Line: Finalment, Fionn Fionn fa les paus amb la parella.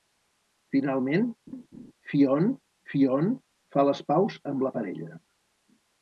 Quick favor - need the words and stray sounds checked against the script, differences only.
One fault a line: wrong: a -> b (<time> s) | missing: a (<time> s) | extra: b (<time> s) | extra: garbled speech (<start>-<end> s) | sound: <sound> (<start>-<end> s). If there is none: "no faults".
sound: laugh (1.5-1.9 s)